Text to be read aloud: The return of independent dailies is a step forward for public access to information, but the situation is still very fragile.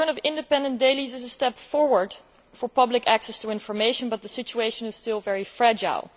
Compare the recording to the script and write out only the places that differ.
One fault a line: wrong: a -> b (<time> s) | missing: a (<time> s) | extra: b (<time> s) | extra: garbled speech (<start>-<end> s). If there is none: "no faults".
no faults